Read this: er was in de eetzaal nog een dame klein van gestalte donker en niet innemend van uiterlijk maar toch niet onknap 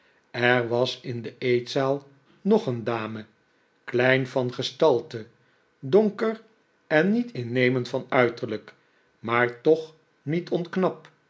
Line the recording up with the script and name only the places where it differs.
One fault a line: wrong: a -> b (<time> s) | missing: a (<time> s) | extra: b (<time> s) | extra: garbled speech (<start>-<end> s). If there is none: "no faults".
no faults